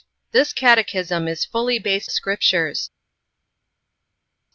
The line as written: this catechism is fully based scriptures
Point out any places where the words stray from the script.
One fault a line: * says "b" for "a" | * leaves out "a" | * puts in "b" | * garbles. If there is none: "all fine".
all fine